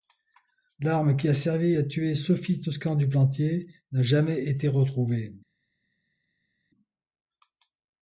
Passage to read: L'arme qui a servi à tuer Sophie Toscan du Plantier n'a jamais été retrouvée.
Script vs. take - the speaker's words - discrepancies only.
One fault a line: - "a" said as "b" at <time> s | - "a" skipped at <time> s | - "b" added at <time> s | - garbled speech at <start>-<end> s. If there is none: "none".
none